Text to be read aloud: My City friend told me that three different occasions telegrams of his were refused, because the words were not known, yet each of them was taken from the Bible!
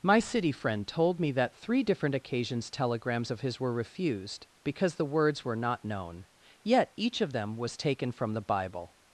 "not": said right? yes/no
yes